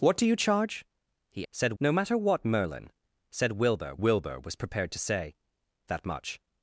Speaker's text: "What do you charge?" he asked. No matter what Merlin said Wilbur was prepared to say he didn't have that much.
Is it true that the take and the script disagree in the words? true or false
true